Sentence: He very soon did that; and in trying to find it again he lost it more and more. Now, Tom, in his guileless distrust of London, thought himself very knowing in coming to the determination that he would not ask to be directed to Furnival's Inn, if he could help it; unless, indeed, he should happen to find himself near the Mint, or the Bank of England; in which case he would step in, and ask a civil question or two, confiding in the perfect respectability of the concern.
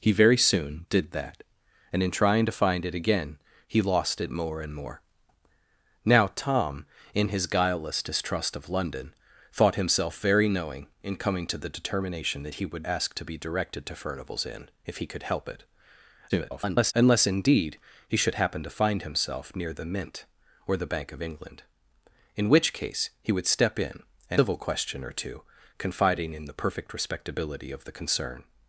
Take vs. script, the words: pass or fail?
fail